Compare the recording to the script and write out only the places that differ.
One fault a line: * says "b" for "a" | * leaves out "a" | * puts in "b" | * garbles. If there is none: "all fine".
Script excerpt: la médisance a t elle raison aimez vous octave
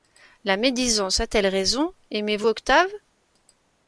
all fine